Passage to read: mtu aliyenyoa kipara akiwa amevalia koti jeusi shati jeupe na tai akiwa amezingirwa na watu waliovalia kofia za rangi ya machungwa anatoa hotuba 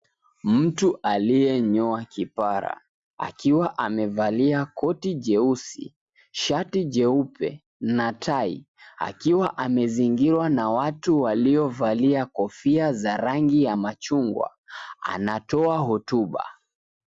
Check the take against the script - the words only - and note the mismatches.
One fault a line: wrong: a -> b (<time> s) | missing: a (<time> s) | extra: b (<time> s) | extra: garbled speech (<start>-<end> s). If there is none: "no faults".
no faults